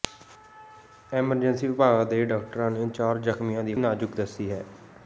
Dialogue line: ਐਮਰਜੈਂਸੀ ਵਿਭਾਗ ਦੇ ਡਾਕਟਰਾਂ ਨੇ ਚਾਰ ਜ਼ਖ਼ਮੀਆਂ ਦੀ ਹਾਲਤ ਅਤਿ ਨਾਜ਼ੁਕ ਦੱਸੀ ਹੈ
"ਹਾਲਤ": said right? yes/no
no